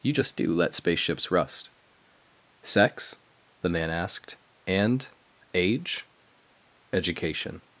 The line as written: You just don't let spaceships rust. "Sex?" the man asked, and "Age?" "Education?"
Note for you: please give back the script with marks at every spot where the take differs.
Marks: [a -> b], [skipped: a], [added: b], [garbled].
You just [don't -> do] let spaceships rust. "Sex?" the man asked, and "Age?" "Education?"